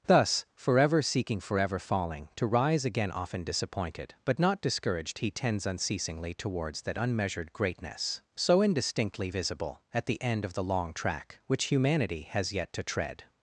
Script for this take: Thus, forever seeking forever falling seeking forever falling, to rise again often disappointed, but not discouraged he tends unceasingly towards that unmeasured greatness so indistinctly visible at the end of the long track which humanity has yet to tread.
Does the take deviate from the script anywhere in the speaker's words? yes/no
yes